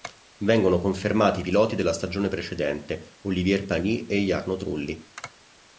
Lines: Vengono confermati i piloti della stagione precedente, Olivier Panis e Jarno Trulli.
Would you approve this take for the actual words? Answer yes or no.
yes